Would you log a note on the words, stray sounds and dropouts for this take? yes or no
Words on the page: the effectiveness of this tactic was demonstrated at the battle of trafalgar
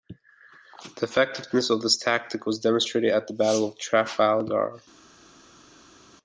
no